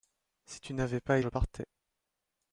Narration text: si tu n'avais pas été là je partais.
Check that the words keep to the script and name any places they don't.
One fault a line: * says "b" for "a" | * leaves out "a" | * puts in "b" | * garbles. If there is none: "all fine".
* leaves out "été là"